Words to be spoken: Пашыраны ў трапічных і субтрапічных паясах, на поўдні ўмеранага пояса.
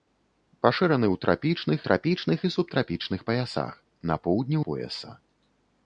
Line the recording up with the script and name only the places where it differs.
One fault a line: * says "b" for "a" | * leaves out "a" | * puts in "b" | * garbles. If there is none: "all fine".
* puts in "трапічных"
* leaves out "ўмеранага"